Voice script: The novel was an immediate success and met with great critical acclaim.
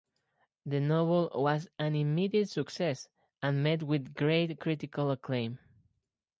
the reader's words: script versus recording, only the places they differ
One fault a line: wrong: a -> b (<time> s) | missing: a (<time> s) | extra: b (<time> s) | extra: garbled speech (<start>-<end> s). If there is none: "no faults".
no faults